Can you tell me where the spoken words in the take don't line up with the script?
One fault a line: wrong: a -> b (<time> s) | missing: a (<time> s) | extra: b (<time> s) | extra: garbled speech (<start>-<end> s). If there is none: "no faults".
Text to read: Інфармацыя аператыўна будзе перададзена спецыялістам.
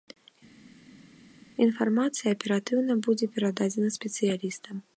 no faults